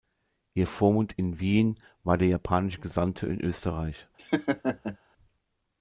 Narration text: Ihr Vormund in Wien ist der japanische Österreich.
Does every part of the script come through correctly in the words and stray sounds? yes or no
no